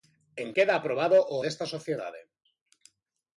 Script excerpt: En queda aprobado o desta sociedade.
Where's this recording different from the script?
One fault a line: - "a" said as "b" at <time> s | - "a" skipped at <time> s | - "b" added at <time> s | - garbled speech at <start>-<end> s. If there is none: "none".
none